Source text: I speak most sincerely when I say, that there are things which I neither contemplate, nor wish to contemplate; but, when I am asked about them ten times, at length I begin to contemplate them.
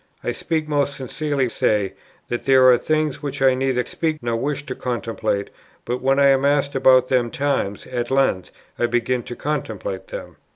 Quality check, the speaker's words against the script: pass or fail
fail